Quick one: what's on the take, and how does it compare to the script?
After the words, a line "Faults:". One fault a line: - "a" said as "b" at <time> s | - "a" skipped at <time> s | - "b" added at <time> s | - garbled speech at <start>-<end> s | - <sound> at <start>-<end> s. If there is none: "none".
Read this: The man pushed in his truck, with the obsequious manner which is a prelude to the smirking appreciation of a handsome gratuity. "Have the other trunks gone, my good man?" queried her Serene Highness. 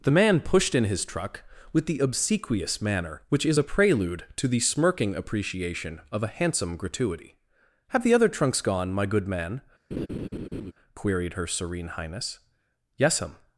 The man pushed in his truck, with the obsequious manner which is a prelude to the smirking appreciation of a handsome gratuity. "Have the other trunks gone, my good man?" queried her Serene Highness. "Yes'm
Faults:
- laugh at 9.9-10.7 s
- "Yes'm" added at 13.0 s